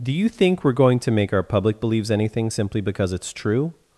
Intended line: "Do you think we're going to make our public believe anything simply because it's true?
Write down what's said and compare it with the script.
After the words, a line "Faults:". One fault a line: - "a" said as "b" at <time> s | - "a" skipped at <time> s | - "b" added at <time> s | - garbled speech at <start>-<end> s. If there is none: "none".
"Do you think we're going to make our public believes anything simply because it's true?
Faults:
- "believe" said as "believes" at 1.8 s